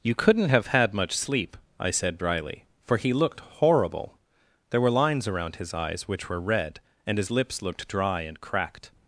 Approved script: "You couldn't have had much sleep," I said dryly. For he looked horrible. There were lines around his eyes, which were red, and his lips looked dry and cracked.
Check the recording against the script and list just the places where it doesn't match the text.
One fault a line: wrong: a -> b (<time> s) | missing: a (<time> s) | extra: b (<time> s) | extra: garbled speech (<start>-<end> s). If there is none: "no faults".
no faults